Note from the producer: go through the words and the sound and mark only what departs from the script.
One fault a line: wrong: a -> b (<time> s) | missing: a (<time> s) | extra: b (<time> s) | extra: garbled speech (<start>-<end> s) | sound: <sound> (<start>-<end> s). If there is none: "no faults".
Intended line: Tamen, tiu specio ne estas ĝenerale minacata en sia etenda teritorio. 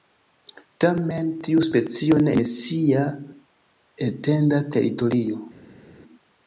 missing: estas ĝenerale minacata (2.3 s)